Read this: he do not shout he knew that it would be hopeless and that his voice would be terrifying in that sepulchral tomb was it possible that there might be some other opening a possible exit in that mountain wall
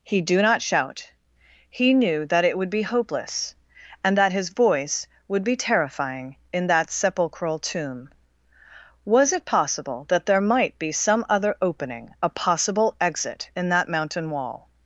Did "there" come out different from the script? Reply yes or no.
no